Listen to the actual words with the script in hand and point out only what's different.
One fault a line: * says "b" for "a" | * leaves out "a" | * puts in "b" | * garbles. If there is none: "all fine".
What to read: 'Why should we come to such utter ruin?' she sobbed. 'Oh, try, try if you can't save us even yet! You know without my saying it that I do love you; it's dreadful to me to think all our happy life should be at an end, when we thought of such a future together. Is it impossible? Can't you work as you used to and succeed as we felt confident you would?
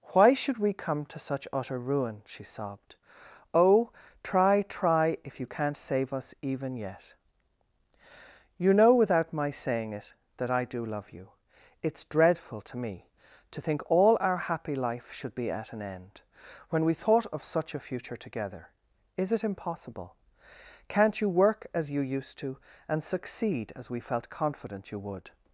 all fine